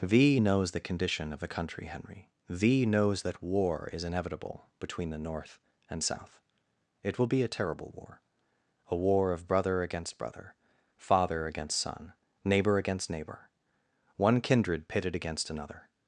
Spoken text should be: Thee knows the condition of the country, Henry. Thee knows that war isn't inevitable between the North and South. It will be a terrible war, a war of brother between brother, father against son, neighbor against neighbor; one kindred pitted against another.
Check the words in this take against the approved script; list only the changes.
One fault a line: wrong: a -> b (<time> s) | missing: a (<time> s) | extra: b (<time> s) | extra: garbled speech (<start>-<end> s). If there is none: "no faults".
wrong: isn't -> is (3.9 s)
wrong: between -> against (9.8 s)